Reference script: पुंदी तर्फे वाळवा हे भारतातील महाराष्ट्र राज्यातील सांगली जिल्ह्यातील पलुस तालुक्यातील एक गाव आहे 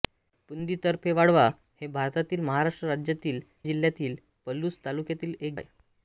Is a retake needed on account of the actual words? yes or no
yes